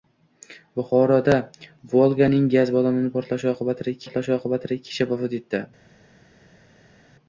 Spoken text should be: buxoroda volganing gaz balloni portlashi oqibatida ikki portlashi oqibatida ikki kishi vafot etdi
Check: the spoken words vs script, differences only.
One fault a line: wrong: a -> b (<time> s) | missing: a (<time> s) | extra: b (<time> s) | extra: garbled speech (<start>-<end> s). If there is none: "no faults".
no faults